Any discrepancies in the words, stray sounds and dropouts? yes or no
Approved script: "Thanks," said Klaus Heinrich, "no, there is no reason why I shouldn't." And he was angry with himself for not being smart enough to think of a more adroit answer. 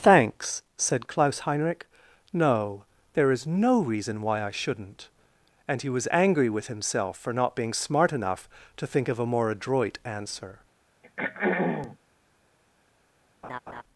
yes